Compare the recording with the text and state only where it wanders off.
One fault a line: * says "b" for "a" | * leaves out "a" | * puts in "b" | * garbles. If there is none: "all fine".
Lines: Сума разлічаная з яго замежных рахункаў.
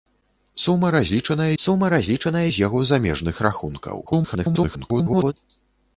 * puts in "сума разлічаная"
* garbles